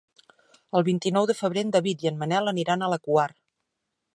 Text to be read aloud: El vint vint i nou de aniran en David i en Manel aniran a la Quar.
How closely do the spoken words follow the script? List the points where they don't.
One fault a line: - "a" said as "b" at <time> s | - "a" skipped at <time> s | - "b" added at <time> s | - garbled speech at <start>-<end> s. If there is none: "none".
- "vint" skipped at 1.0 s
- "aniran" said as "febrer" at 1.4 s